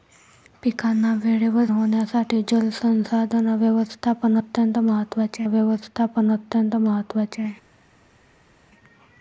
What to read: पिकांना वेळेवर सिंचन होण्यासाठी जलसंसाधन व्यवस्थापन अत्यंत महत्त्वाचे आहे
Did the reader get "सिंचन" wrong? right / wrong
wrong